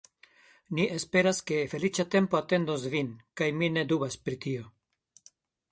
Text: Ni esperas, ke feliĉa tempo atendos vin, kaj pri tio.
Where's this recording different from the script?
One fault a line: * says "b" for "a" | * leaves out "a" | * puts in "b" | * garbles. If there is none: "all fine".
* puts in "mi ne dubas"